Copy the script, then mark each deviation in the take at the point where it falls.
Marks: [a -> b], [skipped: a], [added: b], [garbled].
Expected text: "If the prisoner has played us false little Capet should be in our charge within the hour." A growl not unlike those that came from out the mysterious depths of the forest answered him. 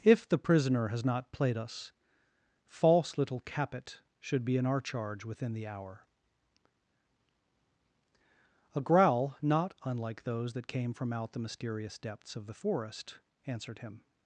"If the prisoner has [added: not] played us false little Capet should be in our charge within the hour." A growl not unlike those that came from out the mysterious depths of the forest answered him.